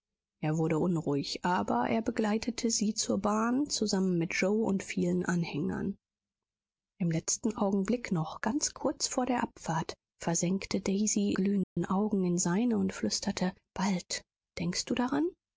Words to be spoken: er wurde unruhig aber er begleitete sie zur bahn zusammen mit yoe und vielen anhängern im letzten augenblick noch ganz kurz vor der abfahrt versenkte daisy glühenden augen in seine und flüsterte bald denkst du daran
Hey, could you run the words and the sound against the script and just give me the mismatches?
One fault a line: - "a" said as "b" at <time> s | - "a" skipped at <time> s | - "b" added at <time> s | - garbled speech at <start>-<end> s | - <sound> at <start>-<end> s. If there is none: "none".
- dropout at 11.6-11.8 s